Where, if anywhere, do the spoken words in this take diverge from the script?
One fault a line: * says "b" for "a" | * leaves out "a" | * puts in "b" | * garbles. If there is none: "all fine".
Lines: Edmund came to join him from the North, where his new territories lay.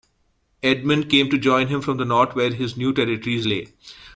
all fine